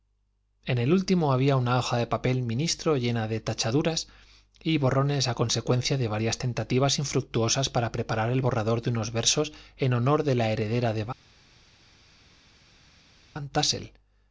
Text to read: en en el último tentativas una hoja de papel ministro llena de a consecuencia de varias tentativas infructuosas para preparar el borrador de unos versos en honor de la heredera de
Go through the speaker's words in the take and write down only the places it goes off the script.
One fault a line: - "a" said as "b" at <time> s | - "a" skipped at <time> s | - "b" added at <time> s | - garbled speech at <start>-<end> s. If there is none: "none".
- "en" skipped at 0.8 s
- "tentativas" said as "había" at 1.3 s
- "tachaduras y borrones" added at 3.4 s